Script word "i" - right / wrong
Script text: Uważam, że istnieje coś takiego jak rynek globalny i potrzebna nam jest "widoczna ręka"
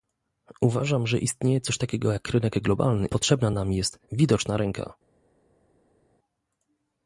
wrong